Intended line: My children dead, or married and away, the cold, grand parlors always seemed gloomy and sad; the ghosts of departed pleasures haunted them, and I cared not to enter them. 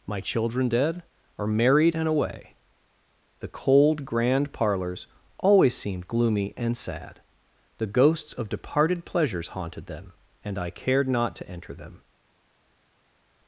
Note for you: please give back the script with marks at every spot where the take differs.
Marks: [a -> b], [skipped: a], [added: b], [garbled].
My children dead, or married and away, the cold, grand parlors always seemed gloomy and sad; the ghosts of departed pleasures haunted them, and I cared not to enter them.